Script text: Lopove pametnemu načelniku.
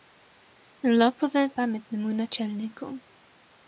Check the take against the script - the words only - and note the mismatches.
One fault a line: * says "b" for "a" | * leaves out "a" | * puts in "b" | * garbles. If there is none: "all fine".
all fine